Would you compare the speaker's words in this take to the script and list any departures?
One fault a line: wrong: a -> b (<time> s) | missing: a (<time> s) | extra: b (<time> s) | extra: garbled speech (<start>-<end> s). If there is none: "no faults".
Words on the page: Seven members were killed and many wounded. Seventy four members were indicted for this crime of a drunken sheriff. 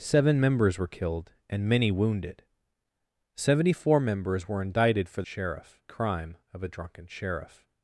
wrong: this -> sheriff (5.2 s)